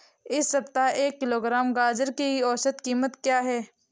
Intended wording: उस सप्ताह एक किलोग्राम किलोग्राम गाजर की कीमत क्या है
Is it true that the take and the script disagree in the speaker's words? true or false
true